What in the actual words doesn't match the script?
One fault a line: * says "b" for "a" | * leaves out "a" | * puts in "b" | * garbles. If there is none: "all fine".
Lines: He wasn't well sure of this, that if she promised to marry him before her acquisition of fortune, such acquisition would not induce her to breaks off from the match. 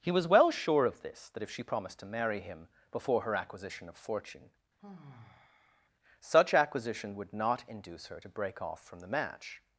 * says "was" for "wasn't"
* says "break" for "breaks"